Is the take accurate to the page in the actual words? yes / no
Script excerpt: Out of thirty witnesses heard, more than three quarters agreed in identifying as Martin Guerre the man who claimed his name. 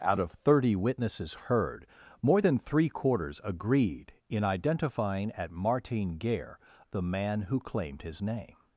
no